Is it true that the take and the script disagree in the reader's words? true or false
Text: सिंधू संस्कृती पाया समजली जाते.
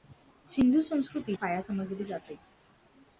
false